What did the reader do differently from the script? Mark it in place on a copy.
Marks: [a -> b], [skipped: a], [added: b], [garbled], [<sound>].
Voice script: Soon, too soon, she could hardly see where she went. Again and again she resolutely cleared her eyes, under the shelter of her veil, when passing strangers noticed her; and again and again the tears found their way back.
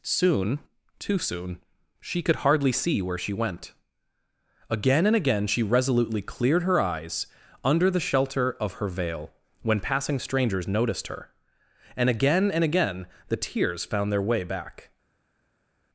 Soon, too soon, she could hardly see where she went. Again and again she resolutely cleared her eyes, under the shelter of her veil, when passing strangers noticed her; and again and again the tears found their way back.